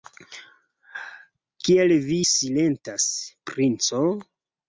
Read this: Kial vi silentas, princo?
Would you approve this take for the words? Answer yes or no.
yes